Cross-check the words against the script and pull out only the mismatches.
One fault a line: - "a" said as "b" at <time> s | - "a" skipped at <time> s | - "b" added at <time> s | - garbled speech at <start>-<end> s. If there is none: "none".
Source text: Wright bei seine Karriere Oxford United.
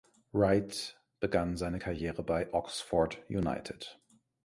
- "bei" said as "begann" at 1.2 s
- "bei" added at 2.2 s